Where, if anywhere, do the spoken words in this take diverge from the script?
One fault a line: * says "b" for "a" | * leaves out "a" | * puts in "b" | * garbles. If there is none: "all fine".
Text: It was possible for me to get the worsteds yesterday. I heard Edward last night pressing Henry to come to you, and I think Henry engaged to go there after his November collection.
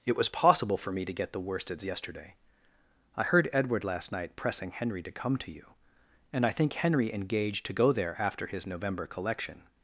all fine